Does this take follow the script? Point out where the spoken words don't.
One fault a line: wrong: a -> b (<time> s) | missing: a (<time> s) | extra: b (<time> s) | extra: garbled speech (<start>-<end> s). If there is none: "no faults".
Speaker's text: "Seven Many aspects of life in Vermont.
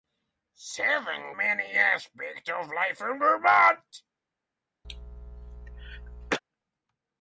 no faults